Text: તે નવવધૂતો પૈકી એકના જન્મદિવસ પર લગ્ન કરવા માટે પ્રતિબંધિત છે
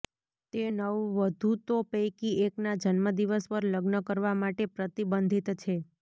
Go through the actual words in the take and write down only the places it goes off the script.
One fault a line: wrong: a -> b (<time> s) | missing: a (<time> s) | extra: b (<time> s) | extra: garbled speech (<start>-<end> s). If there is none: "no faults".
no faults